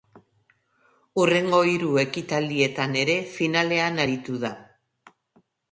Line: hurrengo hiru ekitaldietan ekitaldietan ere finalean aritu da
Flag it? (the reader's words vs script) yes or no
yes